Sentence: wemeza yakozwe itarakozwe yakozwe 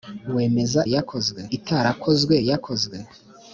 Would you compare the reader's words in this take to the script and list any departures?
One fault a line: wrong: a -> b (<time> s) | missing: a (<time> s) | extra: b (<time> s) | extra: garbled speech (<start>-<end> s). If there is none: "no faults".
no faults